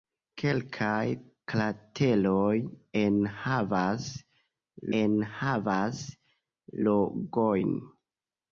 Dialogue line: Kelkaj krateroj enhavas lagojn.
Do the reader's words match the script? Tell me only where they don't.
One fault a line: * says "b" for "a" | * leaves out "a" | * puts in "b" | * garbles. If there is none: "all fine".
* puts in "enhavas"